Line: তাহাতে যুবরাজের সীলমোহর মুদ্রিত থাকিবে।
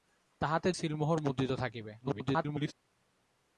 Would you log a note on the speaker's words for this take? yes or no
yes